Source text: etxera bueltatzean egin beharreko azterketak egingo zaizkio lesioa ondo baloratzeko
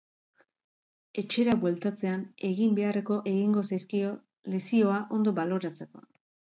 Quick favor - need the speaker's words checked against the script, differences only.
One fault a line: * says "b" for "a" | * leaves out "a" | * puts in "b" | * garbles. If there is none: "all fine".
* leaves out "azterketak"